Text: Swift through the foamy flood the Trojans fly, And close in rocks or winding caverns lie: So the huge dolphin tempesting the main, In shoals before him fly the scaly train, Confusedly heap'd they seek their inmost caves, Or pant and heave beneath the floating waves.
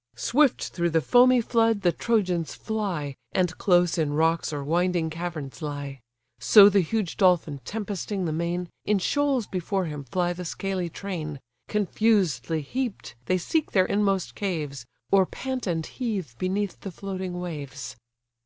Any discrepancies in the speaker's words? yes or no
no